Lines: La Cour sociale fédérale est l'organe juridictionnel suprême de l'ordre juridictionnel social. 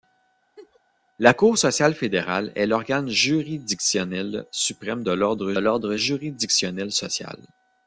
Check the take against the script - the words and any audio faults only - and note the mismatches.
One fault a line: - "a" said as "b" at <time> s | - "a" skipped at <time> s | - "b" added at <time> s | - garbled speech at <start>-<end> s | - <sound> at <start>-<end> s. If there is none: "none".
- laugh at 0.6-0.8 s
- "l'ordre" added at 5.6 s